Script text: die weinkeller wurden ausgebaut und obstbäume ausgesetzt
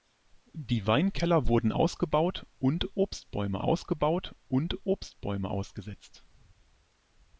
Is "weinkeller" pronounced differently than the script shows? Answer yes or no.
no